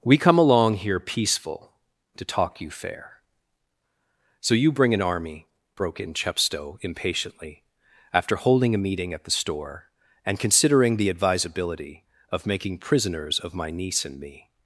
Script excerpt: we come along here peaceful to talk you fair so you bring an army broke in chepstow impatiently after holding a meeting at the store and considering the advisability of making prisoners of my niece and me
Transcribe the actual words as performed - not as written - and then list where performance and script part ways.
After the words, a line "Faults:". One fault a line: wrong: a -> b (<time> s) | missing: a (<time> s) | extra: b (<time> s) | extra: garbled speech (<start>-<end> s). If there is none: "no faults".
we come along here peaceful to talk you fair so you bring an army broke in chepstow impatiently after holding a meeting at the store and considering the advisability of making prisoners of my niece and me
Faults:
no faults